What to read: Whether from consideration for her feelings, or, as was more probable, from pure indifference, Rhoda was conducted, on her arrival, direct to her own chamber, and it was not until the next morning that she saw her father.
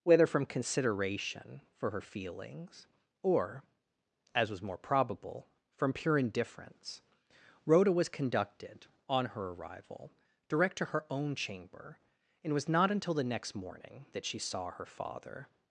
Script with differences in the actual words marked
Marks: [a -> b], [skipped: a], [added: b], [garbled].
Whether from consideration for her feelings, or, as was more probable, from pure indifference, Rhoda was conducted, on her arrival, direct to her own chamber, and it was not until the next morning that she saw her father.